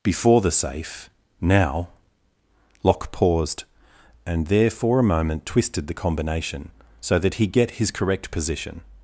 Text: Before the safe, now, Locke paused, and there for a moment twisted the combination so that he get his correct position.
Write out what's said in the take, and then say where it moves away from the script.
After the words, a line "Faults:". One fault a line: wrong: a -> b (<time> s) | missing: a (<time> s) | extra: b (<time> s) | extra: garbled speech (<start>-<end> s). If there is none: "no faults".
Before the safe, now, Locke paused, and there for a moment twisted the combination so that he get his correct position.
Faults:
no faults